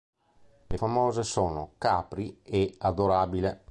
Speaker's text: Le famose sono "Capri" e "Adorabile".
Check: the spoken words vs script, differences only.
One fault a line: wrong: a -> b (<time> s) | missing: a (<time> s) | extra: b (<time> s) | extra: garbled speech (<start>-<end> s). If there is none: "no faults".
no faults